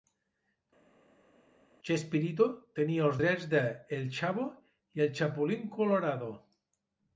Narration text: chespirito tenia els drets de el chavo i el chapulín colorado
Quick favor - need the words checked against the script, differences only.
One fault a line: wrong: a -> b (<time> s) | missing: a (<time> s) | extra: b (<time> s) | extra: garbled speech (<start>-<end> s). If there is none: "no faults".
no faults